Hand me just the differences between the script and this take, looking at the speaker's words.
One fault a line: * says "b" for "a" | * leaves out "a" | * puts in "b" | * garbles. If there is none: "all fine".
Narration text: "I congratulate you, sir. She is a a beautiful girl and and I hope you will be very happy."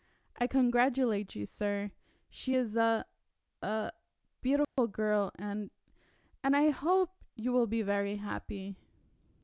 all fine